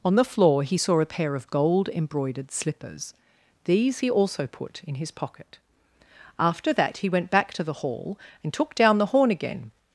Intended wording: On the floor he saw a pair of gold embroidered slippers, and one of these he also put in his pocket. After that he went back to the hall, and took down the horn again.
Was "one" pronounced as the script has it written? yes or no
no